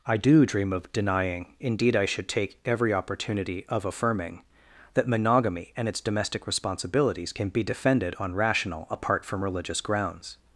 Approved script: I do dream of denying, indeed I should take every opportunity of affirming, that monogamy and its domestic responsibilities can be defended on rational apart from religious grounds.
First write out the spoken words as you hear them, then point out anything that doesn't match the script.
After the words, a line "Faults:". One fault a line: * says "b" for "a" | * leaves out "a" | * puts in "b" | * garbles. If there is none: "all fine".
I do dream of denying, indeed I should take every opportunity of affirming, that monogamy and its domestic responsibilities can be defended on rational apart from religious grounds.
Faults:
all fine